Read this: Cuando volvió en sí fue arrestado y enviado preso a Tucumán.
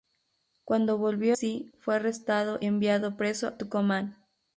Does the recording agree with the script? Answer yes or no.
no